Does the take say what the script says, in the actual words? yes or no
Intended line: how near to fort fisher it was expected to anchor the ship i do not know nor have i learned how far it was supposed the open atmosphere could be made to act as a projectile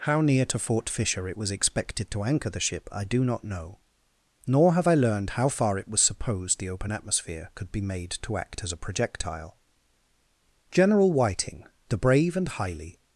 no